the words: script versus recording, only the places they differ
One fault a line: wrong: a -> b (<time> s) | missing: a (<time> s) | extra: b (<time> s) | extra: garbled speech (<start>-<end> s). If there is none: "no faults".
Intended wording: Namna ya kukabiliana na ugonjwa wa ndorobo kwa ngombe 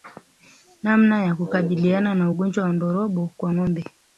no faults